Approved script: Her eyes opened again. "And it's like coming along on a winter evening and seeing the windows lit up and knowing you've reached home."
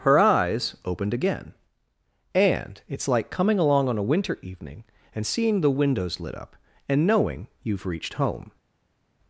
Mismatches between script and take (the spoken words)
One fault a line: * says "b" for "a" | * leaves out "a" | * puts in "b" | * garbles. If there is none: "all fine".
all fine